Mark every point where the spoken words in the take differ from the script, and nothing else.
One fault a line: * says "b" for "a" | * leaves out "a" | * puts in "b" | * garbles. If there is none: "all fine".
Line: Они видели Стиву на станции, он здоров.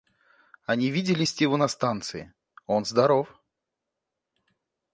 all fine